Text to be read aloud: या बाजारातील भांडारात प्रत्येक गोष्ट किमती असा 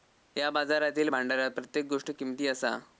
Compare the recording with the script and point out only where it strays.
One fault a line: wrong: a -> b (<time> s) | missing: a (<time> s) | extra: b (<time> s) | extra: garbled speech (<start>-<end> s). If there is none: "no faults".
no faults